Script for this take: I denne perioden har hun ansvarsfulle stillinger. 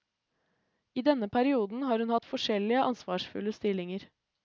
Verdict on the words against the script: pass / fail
fail